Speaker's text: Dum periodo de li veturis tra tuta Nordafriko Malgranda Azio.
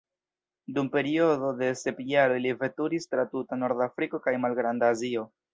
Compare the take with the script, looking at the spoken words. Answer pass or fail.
fail